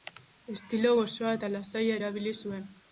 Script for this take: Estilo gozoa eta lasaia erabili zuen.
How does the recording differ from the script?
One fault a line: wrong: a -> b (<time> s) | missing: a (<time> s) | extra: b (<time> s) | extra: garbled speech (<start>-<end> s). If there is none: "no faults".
no faults